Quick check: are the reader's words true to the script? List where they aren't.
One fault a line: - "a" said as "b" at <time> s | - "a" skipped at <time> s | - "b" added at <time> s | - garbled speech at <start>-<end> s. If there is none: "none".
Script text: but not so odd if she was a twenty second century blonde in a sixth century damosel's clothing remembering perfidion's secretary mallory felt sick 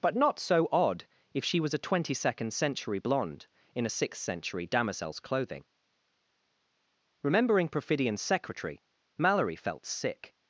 none